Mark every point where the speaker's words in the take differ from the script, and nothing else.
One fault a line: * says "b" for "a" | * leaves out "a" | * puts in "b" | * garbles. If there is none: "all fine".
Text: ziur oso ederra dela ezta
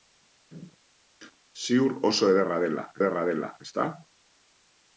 * puts in "ederra dela"